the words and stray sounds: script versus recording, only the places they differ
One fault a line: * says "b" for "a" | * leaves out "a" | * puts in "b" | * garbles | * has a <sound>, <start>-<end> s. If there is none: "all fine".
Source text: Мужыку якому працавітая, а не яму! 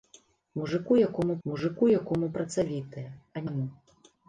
* puts in "мужыку якому"
* leaves out "не"